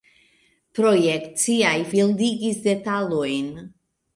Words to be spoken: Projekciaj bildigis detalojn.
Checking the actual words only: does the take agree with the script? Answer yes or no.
yes